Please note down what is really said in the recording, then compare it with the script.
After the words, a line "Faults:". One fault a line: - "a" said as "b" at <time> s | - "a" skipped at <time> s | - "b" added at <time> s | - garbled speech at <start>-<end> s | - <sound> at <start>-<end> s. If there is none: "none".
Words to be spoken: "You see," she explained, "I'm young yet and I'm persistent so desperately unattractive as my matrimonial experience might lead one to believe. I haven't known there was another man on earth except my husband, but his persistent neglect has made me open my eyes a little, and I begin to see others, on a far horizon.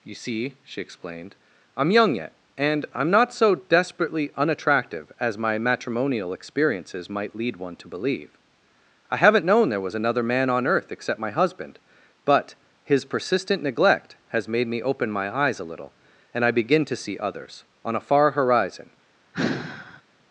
"You see," she explained, "I'm young yet and I'm not so desperately unattractive as my matrimonial experiences might lead one to believe. I haven't known there was another man on earth except my husband, but his persistent neglect has made me open my eyes a little, and I begin to see others, on a far horizon.
Faults:
- "persistent" said as "not" at 3.1 s
- "experience" said as "experiences" at 6.3 s
- sigh at 19.3-20.0 s